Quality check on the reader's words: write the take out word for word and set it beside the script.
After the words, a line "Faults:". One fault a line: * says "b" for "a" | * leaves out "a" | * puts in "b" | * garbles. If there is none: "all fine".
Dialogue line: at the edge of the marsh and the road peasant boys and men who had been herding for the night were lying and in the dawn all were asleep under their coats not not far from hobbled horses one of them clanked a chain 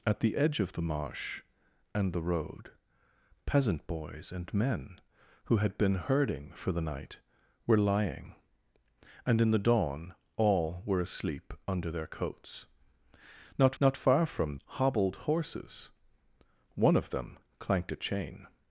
at the edge of the marsh and the road peasant boys and men who had been herding for the night were lying and in the dawn all were asleep under their coats not not far from hobbled horses one of them clanked a chain
Faults:
all fine